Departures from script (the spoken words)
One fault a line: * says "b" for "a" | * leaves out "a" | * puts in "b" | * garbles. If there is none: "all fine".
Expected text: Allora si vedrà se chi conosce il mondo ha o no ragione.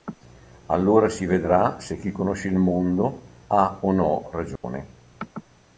all fine